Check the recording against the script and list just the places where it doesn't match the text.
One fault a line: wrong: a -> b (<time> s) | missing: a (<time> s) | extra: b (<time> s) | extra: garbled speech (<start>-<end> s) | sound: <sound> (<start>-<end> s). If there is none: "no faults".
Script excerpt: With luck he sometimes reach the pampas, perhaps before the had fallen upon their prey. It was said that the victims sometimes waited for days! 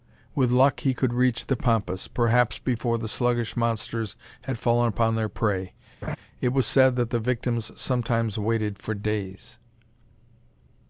wrong: sometimes -> could (0.9 s)
extra: sluggish monsters (3.1 s)
sound: laugh (6.0-6.2 s)